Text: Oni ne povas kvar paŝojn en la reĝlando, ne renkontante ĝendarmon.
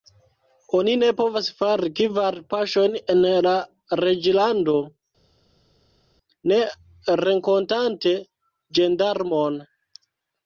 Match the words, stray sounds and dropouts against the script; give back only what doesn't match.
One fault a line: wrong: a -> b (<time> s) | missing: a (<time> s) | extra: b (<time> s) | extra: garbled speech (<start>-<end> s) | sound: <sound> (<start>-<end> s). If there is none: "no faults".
extra: fari (1.6 s)